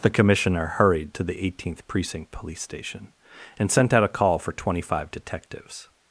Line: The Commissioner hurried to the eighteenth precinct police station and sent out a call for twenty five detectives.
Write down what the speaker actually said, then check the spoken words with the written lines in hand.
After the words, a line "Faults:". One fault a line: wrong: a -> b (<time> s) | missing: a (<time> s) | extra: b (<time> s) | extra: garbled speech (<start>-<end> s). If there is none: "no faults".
The Commissioner hurried to the eighteenth precinct police station and sent out a call for twenty five detectives.
Faults:
no faults